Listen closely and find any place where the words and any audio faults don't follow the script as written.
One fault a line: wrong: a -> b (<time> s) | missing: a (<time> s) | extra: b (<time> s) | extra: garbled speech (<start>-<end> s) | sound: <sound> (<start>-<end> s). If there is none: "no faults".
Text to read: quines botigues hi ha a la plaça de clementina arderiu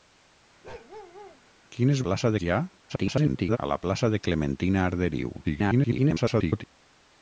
sound: bark (0.6-1.4 s)
wrong: botigues -> plaça (2.1 s)
extra: garbled speech (2.9-3.6 s)
extra: garbled speech (5.4-6.6 s)